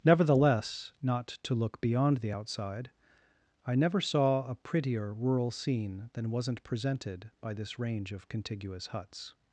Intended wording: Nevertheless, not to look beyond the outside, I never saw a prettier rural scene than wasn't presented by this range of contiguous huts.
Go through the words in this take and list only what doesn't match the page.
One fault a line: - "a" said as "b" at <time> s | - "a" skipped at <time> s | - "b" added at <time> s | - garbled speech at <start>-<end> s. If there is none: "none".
none